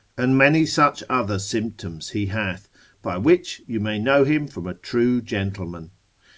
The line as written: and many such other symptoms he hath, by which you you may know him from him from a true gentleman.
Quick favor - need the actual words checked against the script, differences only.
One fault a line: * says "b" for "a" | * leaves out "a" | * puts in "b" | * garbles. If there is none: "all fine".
* leaves out "you"
* leaves out "him from"